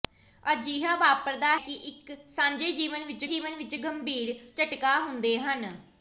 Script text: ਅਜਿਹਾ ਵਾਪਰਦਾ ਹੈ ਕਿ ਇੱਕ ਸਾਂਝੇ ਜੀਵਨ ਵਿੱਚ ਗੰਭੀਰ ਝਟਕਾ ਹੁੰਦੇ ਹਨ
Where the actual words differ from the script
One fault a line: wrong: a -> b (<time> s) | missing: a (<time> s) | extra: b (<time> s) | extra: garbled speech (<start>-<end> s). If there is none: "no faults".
missing: ਹੈ (1.6 s)
extra: ਜੀਵਨ ਵਿੱਚ (3.2 s)